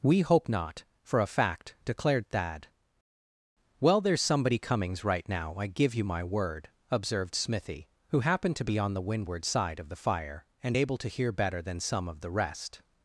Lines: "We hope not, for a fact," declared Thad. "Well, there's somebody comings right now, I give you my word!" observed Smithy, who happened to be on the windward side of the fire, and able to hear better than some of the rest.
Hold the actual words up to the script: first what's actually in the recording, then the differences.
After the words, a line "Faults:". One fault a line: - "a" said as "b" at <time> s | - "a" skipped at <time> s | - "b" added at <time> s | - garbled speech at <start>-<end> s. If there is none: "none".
"We hope not, for a fact," declared Thad. "Well, there's somebody comings right now, I give you my word!" observed Smithy, who happened to be on the windward side of the fire, and able to hear better than some of the rest.
Faults:
none